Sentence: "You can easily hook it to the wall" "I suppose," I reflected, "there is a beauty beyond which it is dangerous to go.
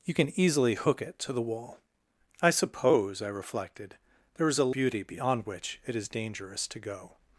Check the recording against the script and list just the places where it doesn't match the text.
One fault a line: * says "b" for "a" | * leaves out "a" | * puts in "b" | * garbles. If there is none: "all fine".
all fine